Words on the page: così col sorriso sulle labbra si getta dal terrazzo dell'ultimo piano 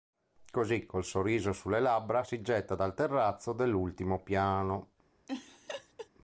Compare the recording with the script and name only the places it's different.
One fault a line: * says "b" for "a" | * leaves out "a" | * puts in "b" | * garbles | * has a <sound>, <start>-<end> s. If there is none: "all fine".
* has a laugh, 5.3-6.1 s